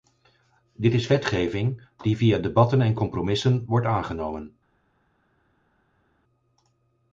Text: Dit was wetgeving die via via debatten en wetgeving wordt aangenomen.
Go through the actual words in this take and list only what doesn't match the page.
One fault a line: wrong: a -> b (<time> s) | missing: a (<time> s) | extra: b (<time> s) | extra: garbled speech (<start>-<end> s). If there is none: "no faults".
wrong: was -> is (0.9 s)
missing: via (2.4 s)
wrong: wetgeving -> compromissen (2.9 s)